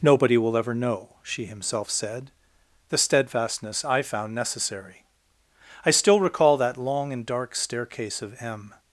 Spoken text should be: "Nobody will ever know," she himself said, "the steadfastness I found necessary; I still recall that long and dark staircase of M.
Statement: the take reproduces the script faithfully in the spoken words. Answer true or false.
true